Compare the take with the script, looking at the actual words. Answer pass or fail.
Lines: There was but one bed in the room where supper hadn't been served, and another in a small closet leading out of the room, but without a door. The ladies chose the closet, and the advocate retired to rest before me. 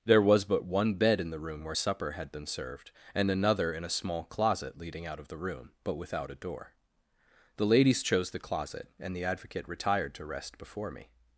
fail